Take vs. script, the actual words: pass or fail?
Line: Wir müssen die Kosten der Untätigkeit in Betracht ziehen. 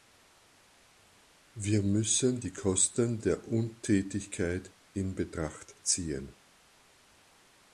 pass